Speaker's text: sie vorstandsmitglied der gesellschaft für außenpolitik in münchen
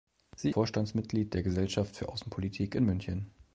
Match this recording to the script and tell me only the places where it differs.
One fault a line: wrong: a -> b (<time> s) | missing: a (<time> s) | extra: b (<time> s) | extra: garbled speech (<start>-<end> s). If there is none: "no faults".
no faults